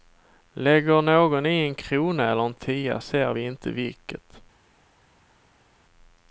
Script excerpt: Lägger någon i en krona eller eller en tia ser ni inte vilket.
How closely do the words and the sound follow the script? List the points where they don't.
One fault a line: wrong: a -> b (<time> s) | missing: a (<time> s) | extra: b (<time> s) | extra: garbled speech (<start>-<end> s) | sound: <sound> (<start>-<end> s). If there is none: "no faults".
missing: eller (2.5 s)
wrong: ni -> vi (3.3 s)